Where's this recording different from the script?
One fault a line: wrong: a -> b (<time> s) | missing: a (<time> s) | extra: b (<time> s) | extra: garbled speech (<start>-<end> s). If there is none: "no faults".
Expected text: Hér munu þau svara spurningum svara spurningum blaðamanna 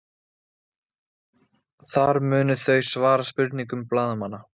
wrong: Hér -> Þar (1.9 s)
missing: svara spurningum (3.9 s)